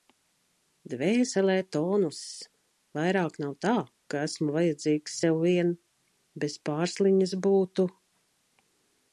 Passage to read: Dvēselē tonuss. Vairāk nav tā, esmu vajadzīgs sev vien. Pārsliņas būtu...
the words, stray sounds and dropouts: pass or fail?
fail